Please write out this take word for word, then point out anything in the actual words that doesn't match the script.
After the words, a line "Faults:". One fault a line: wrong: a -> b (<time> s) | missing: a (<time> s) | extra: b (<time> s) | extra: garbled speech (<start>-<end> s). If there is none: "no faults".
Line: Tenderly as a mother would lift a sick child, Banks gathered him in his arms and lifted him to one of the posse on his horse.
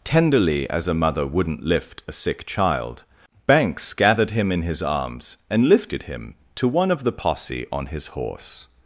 Tenderly as a mother wouldn't lift a sick child, Banks gathered him in his arms and lifted him to one of the posse on his horse.
Faults:
wrong: would -> wouldn't (1.2 s)